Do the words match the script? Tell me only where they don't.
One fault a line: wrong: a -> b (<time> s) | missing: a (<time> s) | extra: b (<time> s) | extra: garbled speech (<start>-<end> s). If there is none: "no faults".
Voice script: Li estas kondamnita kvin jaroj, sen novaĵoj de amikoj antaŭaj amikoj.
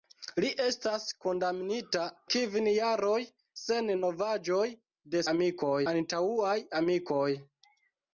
no faults